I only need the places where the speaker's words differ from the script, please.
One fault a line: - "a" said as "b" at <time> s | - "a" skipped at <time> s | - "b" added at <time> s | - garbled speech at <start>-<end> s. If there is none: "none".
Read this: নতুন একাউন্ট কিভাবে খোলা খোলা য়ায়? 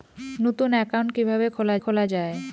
none